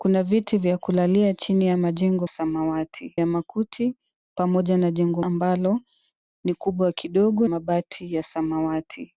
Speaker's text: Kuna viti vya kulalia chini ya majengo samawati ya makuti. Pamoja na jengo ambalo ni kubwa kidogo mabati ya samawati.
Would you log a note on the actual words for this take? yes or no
no